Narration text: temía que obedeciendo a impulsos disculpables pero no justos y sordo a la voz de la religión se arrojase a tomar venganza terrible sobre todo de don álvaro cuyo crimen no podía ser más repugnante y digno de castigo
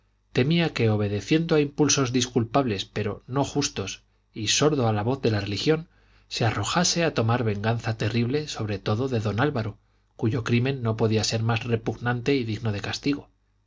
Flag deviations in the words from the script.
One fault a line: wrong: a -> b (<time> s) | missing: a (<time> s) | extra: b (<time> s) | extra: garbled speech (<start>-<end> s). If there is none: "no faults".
no faults